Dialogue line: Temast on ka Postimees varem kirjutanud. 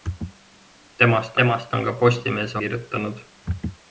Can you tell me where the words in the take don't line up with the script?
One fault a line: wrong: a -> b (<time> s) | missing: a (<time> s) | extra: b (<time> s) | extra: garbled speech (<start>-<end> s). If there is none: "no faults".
extra: temast (1.4 s)
missing: varem (2.6 s)